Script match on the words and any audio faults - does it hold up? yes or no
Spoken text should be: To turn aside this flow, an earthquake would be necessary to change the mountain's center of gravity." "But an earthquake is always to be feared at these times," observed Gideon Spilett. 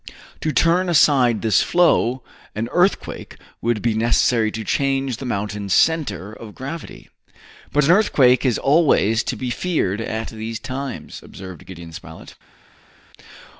yes